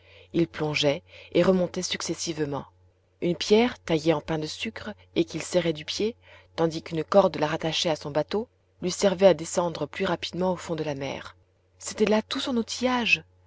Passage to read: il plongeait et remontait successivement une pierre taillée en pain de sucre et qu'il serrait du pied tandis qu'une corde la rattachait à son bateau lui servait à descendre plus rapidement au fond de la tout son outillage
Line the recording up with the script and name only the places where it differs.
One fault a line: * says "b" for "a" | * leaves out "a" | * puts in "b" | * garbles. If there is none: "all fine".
* puts in "mer c'était là"